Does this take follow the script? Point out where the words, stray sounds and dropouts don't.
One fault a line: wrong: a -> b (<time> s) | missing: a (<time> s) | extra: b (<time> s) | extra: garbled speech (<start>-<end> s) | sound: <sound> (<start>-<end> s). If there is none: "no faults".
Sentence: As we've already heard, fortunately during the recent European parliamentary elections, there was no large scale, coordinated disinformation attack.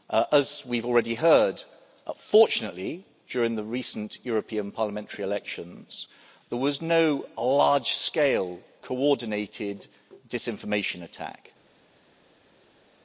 no faults